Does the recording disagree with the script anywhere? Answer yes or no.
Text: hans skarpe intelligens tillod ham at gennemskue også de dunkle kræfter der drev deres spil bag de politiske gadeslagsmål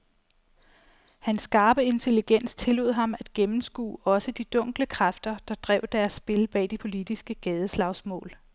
no